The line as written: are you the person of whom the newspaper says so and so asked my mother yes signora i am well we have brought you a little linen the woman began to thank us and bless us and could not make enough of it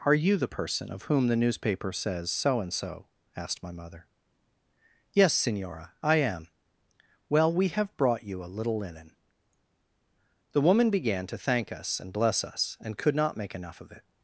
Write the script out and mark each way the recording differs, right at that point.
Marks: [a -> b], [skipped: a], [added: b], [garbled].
are you the person of whom the newspaper says so and so asked my mother yes signora i am well we have brought you a little linen the woman began to thank us and bless us and could not make enough of it